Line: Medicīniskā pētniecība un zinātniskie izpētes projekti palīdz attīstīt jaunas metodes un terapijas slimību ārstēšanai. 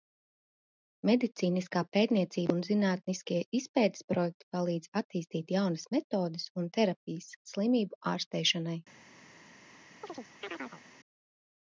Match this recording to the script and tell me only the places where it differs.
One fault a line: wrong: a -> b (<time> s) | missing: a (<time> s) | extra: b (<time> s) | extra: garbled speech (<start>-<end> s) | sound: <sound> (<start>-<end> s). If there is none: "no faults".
sound: chirp (10.0-10.8 s)